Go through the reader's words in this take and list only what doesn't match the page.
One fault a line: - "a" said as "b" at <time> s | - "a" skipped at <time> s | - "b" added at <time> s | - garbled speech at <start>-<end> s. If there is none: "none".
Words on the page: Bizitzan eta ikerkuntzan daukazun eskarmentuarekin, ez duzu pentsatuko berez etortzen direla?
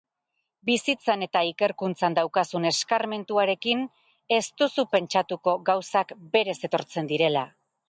- "gauzak" added at 5.7 s